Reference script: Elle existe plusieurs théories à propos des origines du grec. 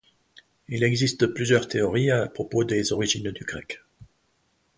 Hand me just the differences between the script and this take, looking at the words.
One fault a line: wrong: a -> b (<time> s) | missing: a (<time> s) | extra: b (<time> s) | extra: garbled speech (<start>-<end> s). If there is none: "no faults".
wrong: Elle -> Il (0.7 s)